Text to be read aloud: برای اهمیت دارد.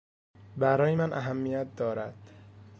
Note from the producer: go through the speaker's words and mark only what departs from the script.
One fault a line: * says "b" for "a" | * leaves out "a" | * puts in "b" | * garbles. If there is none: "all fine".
* puts in "من"